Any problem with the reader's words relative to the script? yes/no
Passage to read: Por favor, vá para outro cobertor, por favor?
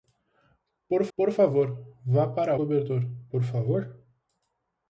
yes